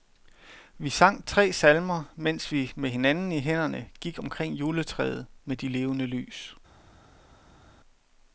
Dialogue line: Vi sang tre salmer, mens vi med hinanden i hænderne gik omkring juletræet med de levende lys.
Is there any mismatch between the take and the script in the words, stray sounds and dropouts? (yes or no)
no